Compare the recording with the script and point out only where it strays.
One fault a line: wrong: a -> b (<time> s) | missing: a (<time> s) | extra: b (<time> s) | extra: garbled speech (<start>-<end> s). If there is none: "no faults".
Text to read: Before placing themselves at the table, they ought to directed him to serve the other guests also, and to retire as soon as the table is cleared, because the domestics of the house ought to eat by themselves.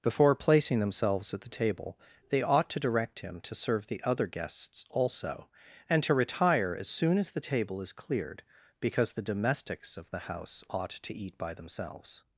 wrong: directed -> direct (2.8 s)